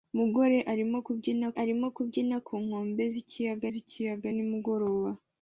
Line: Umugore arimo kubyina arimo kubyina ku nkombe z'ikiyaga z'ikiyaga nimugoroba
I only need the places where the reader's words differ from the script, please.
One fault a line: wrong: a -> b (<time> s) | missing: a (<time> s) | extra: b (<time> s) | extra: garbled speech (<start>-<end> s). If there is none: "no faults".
no faults